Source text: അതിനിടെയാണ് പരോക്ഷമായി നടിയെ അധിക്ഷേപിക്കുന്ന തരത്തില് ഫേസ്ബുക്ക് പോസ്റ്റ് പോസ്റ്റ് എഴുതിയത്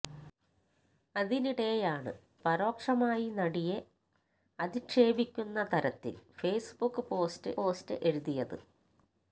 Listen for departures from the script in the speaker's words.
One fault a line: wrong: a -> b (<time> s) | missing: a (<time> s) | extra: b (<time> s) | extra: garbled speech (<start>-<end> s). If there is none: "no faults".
no faults